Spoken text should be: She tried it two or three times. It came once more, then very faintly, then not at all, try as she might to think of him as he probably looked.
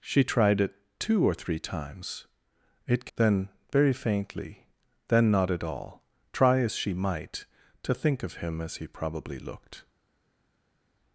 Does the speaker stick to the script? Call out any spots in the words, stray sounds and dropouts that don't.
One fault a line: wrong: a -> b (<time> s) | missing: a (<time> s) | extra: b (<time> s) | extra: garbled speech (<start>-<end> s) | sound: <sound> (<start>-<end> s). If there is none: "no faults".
missing: came once more (3.1 s)